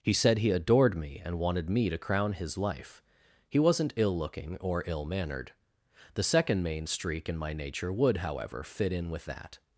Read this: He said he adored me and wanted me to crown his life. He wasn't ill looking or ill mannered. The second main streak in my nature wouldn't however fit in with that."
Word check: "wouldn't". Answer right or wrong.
wrong